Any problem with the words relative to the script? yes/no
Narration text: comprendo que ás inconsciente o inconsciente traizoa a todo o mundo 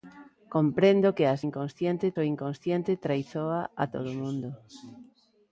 no